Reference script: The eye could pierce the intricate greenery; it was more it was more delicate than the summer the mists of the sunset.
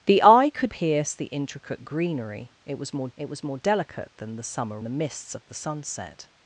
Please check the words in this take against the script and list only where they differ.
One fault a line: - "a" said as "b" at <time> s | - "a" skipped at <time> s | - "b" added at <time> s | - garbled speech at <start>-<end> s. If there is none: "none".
none